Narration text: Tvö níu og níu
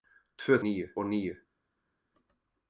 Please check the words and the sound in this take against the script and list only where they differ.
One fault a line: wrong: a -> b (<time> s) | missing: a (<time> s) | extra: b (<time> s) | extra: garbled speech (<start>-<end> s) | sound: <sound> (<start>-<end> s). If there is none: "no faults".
no faults